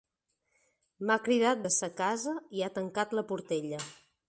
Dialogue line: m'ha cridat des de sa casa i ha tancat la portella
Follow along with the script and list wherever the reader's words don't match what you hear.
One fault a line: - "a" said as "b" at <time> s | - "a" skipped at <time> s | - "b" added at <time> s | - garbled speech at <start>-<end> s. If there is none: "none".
- "des" skipped at 1.6 s